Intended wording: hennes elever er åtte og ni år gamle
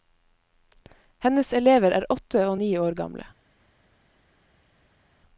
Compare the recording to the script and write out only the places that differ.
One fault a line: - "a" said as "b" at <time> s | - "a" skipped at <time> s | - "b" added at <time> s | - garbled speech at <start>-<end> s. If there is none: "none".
none